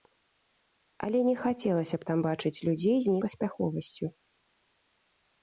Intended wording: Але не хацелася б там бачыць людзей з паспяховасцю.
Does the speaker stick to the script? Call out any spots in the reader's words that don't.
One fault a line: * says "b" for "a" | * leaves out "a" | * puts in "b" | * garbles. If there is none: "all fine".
all fine